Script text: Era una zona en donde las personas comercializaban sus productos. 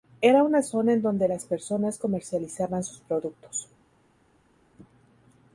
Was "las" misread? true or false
false